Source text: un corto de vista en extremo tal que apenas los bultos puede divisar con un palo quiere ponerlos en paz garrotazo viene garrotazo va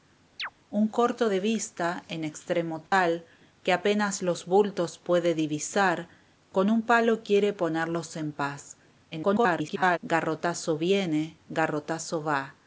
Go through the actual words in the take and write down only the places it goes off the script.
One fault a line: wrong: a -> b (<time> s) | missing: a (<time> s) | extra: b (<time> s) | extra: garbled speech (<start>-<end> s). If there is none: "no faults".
extra: garbled speech (9.1-10.0 s)